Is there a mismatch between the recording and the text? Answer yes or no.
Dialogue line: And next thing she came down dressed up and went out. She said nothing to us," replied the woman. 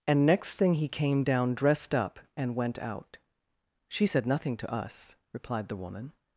yes